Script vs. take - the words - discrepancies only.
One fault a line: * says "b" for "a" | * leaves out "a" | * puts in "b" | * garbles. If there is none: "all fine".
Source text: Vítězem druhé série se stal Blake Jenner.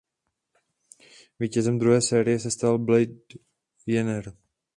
all fine